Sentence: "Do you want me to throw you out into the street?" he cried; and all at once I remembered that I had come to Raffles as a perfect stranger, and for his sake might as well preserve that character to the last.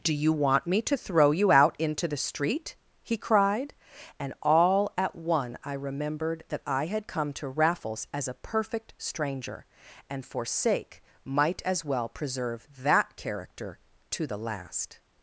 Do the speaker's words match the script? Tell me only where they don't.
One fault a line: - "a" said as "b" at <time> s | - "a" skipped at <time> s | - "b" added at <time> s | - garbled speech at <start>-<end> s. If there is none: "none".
- "once" said as "one" at 5.1 s
- "his" skipped at 10.4 s